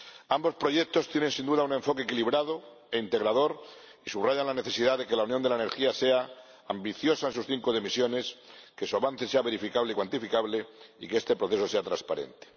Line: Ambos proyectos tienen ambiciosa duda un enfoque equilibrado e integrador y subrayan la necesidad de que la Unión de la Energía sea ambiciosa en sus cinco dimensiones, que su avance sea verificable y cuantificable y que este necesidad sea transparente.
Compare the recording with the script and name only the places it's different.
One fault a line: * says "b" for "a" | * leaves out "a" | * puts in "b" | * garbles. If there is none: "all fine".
* says "sin" for "ambiciosa"
* says "proceso" for "necesidad"